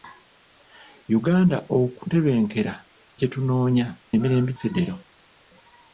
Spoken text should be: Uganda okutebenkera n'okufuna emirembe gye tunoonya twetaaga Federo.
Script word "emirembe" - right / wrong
wrong